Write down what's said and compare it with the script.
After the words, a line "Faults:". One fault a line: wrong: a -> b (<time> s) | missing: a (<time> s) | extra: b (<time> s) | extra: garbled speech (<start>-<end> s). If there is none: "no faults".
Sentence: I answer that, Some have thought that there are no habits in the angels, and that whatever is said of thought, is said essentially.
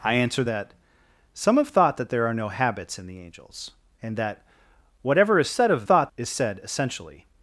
I answer that, Some have thought that there are no habits in the angels, and that whatever is said of thought, is said essentially.
Faults:
no faults